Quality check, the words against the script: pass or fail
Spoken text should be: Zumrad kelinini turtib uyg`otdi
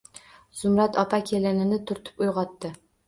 fail